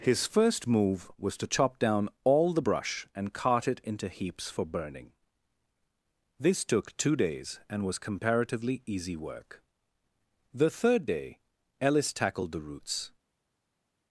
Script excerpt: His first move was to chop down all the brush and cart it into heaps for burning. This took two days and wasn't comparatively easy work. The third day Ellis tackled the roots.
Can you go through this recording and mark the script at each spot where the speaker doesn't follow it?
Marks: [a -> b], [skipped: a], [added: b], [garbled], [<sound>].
His first move was to chop down all the brush and cart it into heaps for burning. This took two days and [wasn't -> was] comparatively easy work. The third day Ellis tackled the roots.